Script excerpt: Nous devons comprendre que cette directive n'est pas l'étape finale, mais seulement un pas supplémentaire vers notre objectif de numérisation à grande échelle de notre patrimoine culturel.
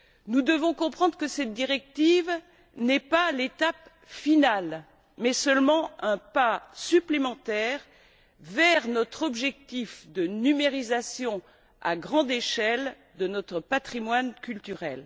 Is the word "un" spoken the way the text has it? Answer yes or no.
yes